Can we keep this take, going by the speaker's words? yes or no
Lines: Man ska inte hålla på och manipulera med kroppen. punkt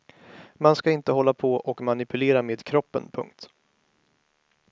yes